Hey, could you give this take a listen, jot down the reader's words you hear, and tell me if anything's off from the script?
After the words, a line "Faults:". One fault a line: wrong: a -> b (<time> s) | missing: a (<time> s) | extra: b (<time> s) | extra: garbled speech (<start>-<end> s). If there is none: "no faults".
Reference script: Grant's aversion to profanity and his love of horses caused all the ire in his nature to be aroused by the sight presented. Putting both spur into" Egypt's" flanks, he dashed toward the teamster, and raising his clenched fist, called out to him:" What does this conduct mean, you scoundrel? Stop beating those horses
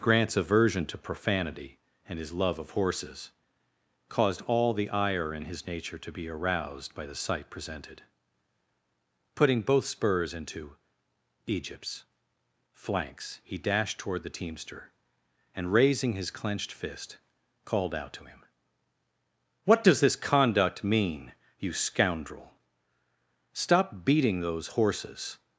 Grant's aversion to profanity and his love of horses caused all the ire in his nature to be aroused by the sight presented. Putting both spurs into" Egypt's" flanks, he dashed toward the teamster, and raising his clenched fist, called out to him:" What does this conduct mean, you scoundrel? Stop beating those horses
Faults:
wrong: spur -> spurs (9.8 s)